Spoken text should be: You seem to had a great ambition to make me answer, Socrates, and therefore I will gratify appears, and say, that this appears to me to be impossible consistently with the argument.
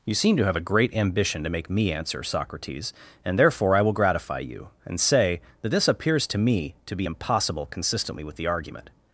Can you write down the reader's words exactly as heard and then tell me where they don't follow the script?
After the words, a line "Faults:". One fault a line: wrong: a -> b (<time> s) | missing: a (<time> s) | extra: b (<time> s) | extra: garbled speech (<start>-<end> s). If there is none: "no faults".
You seem to have a great ambition to make me answer, Socrates, and therefore I will gratify you, and say, that this appears to me to be impossible consistently with the argument.
Faults:
wrong: had -> have (0.5 s)
wrong: appears -> you (4.4 s)